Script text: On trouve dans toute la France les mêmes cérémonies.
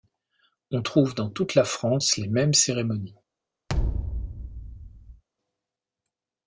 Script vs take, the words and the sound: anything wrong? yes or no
yes